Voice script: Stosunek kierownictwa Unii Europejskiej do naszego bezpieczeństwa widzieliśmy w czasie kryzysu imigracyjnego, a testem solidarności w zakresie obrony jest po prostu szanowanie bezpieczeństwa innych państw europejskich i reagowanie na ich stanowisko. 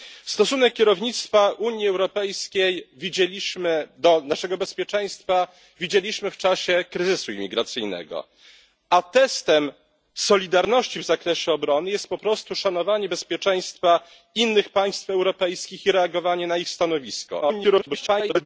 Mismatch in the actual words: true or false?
true